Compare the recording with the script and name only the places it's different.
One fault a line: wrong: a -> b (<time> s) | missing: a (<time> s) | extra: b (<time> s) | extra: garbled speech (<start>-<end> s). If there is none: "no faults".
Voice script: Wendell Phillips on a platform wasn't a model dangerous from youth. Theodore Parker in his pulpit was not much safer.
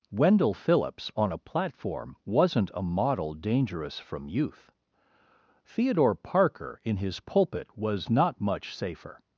no faults